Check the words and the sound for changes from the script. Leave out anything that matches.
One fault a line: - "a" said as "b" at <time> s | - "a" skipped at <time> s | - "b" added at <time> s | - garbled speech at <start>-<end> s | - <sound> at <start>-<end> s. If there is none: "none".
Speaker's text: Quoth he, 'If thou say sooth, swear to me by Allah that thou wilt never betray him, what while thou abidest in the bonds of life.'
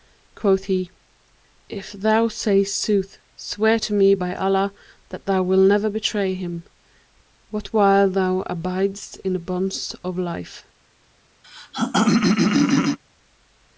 - throat clearing at 11.4-13.0 s